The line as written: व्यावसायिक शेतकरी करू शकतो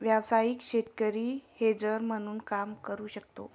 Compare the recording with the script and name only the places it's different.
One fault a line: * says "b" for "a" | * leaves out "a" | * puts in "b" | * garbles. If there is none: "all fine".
* puts in "हेजर म्हणून काम"